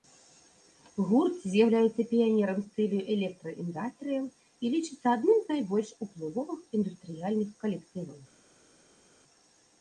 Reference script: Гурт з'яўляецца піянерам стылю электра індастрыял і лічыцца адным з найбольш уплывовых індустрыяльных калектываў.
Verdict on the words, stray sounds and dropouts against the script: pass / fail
pass